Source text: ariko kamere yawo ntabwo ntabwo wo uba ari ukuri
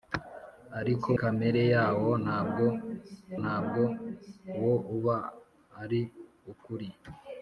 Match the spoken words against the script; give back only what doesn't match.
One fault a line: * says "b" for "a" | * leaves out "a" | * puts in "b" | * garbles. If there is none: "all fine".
all fine